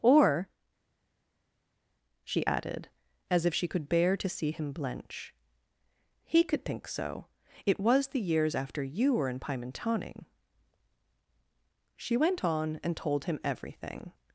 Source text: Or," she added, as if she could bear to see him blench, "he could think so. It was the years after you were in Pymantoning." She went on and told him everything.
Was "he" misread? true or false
false